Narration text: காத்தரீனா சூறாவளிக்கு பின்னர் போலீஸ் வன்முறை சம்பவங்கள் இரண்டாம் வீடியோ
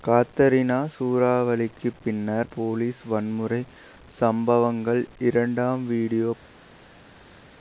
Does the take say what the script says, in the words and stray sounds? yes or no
yes